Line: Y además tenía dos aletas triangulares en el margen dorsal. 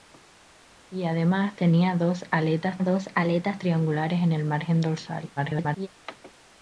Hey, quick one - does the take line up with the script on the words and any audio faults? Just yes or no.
no